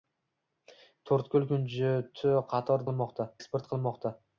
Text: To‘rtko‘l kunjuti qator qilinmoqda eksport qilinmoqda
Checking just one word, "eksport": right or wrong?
right